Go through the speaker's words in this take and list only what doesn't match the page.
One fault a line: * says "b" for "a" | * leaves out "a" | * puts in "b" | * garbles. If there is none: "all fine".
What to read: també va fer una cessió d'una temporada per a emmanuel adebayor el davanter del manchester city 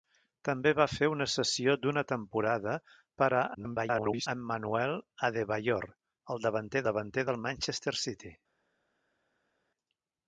* garbles
* puts in "davanter"